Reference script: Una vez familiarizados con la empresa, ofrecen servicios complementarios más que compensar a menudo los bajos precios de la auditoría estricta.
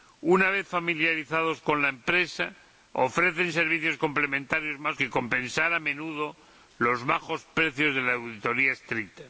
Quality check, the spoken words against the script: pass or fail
pass